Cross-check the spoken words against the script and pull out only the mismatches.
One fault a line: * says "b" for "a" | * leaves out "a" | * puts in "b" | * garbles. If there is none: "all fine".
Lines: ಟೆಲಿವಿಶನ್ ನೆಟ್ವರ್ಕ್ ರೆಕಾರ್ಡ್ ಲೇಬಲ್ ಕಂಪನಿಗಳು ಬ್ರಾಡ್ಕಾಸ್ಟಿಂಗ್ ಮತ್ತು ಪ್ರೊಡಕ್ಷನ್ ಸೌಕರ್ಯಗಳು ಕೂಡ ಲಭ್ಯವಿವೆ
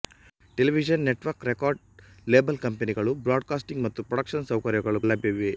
* leaves out "ಕೂಡ"